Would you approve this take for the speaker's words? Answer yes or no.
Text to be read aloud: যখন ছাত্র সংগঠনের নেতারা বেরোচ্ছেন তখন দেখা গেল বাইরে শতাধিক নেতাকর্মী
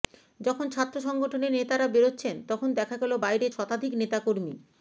yes